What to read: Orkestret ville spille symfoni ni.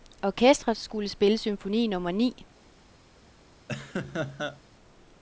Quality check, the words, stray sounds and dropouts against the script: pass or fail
fail